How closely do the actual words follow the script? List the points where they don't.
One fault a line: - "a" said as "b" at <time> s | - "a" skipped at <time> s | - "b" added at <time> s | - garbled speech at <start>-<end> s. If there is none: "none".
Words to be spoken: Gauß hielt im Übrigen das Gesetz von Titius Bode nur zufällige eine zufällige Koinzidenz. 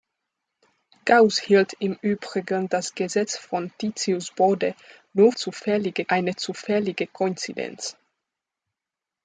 none